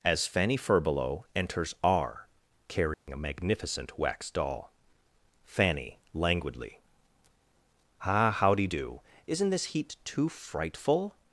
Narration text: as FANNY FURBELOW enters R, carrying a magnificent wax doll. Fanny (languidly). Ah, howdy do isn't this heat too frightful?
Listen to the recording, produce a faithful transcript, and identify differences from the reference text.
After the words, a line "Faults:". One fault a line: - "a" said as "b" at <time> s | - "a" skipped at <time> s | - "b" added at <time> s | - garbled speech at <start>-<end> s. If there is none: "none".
as FANNY FURBELOW enters R, carrying a magnificent wax doll. Fanny (languidly). Ah, howdy do isn't this heat too frightful?
Faults:
none